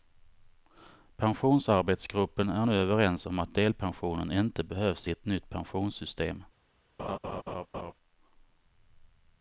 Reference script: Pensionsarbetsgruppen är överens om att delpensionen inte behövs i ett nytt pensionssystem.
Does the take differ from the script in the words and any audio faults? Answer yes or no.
yes